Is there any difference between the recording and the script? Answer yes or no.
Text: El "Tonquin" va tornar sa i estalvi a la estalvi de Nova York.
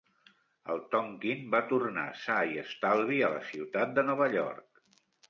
yes